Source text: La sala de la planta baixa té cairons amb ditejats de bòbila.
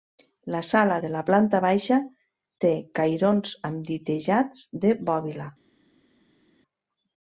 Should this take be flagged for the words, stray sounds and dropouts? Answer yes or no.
no